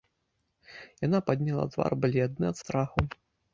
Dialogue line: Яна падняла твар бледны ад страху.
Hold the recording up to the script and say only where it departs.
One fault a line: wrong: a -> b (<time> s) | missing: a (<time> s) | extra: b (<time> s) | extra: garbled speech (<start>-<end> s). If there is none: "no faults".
no faults